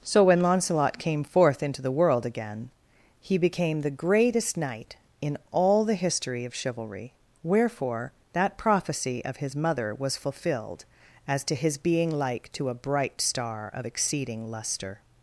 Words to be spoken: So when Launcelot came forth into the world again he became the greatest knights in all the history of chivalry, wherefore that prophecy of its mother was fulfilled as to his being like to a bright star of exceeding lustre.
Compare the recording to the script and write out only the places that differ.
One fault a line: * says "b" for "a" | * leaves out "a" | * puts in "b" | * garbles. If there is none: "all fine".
* says "knight" for "knights"
* says "his" for "its"